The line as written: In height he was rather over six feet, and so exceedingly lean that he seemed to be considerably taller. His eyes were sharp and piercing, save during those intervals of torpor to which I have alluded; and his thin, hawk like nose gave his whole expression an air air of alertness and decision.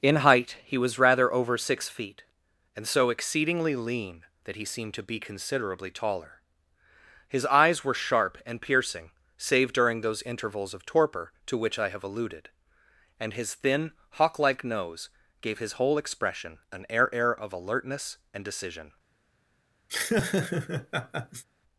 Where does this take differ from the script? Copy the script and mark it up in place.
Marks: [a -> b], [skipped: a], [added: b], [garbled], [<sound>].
In height he was rather over six feet, and so exceedingly lean that he seemed to be considerably taller. His eyes were sharp and piercing, save during those intervals of torpor to which I have alluded; and his thin, hawk like nose gave his whole expression an air air of alertness and decision. [laugh]